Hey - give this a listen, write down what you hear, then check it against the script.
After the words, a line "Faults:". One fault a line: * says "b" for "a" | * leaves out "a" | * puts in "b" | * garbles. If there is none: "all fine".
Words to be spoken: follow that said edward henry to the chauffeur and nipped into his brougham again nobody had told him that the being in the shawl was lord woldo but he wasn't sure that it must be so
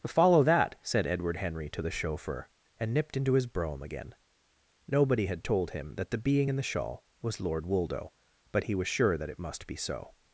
follow that said edward henry to the chauffeur and nipped into his brougham again nobody had told him that the being in the shawl was lord woldo but he was sure that it must be so
Faults:
* says "was" for "wasn't"